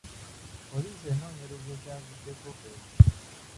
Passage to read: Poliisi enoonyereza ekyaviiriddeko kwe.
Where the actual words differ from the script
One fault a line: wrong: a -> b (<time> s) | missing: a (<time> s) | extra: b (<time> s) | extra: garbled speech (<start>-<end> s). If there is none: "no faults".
no faults